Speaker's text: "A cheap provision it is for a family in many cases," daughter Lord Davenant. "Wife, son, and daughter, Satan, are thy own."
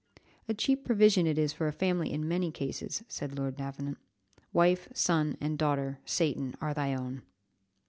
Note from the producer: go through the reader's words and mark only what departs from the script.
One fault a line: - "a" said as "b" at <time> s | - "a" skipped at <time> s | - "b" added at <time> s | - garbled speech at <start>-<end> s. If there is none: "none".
- "daughter" said as "said" at 3.1 s